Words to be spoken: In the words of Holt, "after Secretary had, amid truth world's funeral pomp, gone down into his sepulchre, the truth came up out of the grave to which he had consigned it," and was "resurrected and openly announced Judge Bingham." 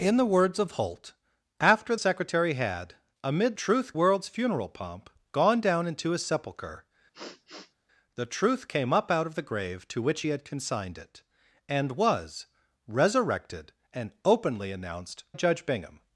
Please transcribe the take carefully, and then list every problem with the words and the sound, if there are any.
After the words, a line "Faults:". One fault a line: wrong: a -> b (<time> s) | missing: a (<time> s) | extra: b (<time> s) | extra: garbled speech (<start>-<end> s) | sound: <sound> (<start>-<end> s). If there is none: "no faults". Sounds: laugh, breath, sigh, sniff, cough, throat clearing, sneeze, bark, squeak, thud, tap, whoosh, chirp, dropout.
In the words of Holt, "after Secretary had, amid truth world's funeral pomp, gone down into his sepulchre, the truth came up out of the grave to which he had consigned it," and was "resurrected and openly announced Judge Bingham."
Faults:
sound: sniff (7.1-7.7 s)